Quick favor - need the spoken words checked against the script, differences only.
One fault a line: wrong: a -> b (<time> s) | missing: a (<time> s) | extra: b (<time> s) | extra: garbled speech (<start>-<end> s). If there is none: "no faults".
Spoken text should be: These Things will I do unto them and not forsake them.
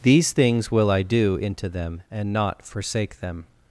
wrong: unto -> into (1.4 s)